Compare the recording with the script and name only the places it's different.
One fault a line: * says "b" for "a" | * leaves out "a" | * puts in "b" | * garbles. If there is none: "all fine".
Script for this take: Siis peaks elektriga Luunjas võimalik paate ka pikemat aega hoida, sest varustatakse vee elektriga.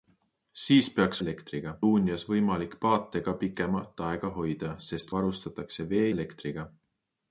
all fine